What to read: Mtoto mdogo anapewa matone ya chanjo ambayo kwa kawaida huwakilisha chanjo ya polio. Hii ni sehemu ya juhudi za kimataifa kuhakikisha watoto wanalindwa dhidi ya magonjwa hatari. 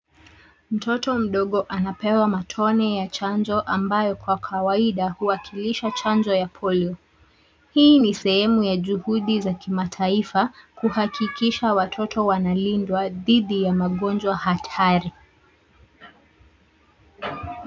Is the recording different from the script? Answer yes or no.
no